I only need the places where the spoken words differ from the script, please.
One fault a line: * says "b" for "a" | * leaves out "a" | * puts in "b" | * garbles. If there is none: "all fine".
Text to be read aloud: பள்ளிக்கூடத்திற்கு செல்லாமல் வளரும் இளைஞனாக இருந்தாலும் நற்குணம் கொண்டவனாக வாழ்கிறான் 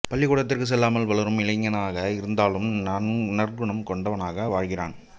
all fine